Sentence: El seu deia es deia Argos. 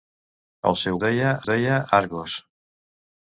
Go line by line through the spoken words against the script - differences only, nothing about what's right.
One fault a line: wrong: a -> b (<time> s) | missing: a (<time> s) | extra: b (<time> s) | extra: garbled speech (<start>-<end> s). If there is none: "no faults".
no faults